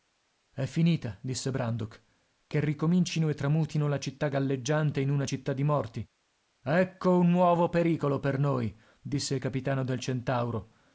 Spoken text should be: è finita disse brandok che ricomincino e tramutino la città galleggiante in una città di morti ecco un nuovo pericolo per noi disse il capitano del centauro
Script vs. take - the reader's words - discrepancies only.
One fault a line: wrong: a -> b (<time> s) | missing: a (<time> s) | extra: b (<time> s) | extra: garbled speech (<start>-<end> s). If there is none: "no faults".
no faults